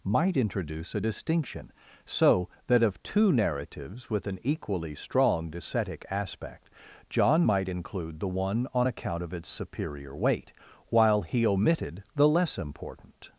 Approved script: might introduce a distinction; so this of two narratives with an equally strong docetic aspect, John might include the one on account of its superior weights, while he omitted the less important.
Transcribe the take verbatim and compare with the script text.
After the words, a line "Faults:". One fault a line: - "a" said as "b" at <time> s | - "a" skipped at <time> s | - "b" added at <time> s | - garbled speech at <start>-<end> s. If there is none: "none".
might introduce a distinction; so that of two narratives with an equally strong docetic aspect, John might include the one on account of its superior weight, while he omitted the less important.
Faults:
- "this" said as "that" at 2.7 s
- "weights" said as "weight" at 10.1 s